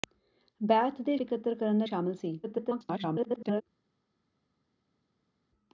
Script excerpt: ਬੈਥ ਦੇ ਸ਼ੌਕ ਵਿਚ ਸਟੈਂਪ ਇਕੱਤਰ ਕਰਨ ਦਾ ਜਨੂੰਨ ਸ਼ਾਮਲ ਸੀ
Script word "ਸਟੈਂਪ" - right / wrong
wrong